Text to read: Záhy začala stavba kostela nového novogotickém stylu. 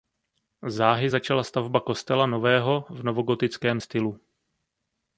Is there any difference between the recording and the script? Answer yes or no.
yes